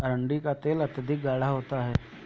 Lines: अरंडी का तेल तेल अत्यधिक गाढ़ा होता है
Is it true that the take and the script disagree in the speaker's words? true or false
true